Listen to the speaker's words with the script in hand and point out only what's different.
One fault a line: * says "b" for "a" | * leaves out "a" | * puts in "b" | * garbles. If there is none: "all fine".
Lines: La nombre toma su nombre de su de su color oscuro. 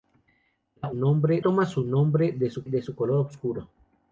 all fine